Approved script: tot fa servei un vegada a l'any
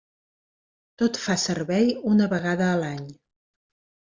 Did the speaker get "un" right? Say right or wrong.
wrong